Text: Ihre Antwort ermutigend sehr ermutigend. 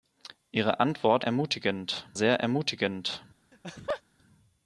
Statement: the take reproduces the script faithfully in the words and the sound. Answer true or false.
false